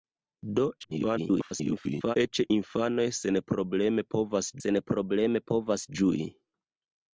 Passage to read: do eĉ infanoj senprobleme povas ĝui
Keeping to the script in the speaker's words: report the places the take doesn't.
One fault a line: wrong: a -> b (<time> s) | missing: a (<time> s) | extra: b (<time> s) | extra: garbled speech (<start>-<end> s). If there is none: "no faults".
extra: garbled speech (0.8-2.2 s)
extra: senprobleme povas (4.6 s)